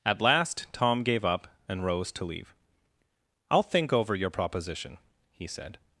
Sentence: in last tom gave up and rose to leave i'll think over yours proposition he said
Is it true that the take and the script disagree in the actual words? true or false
true